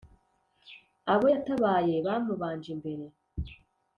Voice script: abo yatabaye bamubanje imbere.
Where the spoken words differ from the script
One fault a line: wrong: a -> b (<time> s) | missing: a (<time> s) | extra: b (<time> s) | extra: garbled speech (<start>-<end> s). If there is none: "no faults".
no faults